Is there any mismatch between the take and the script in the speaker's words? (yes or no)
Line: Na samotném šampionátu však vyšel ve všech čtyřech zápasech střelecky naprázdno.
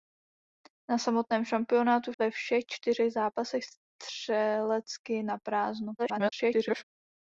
yes